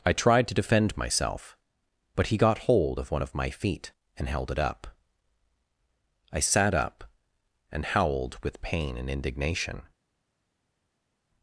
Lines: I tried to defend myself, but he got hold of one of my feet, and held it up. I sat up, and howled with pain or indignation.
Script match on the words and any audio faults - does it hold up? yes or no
no